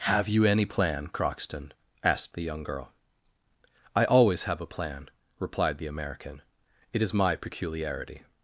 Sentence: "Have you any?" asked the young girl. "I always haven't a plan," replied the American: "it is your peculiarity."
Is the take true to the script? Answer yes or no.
no